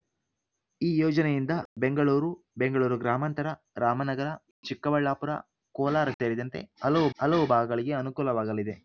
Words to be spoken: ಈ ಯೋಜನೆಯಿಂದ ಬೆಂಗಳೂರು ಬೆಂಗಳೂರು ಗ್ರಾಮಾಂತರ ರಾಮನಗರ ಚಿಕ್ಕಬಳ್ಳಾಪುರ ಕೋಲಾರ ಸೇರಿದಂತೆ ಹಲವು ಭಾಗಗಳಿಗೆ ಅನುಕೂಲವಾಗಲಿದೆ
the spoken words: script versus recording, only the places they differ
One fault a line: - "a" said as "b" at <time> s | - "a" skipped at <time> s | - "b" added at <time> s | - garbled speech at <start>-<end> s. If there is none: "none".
- "ಹಲವು" added at 7.2 s